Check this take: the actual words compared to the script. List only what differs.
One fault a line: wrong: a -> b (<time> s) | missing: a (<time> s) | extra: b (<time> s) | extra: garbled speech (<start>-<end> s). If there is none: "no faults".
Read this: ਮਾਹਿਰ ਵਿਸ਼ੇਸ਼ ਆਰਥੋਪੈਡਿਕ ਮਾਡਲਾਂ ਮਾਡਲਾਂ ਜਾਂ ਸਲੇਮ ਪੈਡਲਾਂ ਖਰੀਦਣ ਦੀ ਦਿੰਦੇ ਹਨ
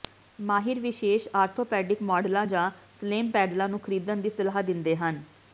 missing: ਮਾਡਲਾਂ (2.5 s)
extra: ਨੂੰ (3.7 s)
extra: ਸਲਾਹ (4.3 s)